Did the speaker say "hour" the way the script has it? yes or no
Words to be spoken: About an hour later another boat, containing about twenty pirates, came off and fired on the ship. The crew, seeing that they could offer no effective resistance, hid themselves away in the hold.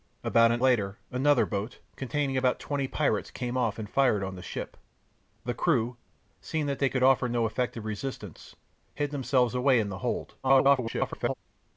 no